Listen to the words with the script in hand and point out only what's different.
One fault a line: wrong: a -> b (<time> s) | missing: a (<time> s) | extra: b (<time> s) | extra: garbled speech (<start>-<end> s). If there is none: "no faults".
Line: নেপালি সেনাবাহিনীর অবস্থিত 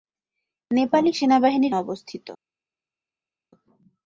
no faults